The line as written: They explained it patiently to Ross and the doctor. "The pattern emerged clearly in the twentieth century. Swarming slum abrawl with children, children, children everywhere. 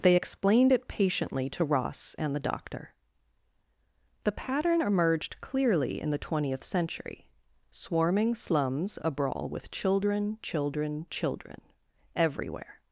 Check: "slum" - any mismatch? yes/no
yes